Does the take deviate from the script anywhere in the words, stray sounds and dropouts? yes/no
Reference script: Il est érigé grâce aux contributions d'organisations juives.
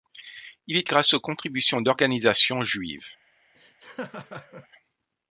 yes